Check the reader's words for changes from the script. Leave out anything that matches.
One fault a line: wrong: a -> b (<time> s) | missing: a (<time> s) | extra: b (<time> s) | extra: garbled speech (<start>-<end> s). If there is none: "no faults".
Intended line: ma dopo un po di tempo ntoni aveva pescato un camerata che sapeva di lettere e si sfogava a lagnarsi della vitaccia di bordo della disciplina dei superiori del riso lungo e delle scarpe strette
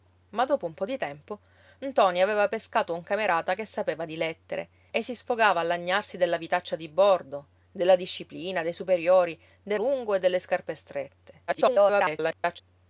missing: riso (9.8 s)
extra: garbled speech (11.5-12.6 s)